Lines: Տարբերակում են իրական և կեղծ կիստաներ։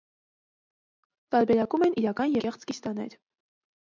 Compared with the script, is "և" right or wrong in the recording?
wrong